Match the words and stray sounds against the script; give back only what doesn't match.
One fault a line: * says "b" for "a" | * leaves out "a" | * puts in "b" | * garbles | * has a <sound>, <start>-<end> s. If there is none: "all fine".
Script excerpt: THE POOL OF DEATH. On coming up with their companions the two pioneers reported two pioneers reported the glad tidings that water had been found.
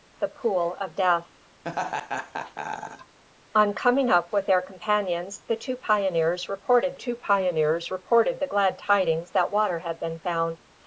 * has a laugh, 1.6-3.2 s